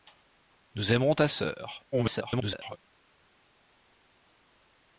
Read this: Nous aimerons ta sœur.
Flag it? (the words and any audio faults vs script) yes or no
yes